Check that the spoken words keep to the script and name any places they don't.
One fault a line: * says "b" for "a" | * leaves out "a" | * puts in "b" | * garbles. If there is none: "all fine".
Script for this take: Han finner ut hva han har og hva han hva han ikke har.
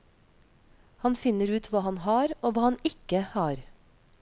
* leaves out "hva han"